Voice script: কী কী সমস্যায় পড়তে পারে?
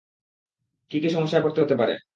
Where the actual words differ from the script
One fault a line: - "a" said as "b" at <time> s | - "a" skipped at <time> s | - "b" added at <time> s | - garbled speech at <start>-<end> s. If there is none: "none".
- "হতে" added at 1.6 s